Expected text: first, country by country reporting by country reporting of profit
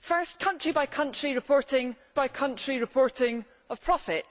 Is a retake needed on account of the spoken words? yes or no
no